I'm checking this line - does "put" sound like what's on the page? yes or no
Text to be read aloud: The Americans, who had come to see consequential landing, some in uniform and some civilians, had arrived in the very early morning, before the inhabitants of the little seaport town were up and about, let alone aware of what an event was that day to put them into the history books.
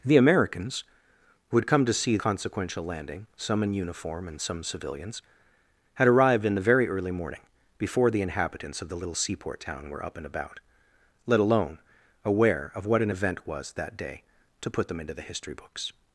yes